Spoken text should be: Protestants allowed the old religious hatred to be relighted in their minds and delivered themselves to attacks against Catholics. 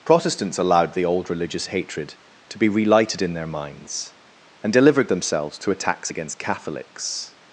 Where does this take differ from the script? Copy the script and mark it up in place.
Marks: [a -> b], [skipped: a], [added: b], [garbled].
Protestants allowed the old religious hatred to be relighted in their minds and delivered themselves to attacks against Catholics.